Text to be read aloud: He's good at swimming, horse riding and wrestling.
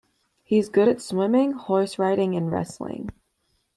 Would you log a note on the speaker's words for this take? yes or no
no